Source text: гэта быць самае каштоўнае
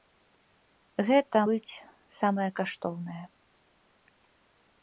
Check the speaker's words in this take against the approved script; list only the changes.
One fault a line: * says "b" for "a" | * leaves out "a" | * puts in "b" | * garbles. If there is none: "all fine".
all fine